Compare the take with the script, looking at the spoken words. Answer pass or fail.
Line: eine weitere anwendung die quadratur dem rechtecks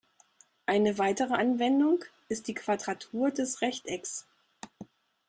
fail